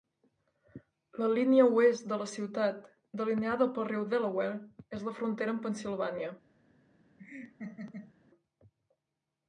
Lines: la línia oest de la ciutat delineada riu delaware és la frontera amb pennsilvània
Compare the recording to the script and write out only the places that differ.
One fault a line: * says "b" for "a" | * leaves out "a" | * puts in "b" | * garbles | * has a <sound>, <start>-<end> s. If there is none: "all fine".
* puts in "pel"
* has a laugh, 7.2-8.1 s